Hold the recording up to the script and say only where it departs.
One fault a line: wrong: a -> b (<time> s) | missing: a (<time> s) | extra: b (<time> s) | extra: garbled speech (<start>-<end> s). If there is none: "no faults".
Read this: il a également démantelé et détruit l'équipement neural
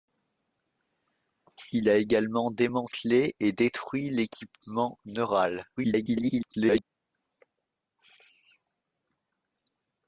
extra: garbled speech (5.8-6.8 s)